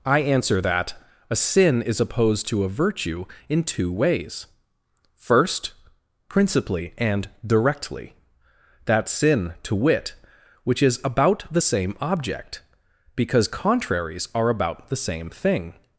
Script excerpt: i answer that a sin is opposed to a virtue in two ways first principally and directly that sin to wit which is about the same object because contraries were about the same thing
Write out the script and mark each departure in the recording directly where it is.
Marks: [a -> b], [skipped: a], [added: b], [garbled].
i answer that a sin is opposed to a virtue in two ways first principally and directly that sin to wit which is about the same object because contraries [were -> are] about the same thing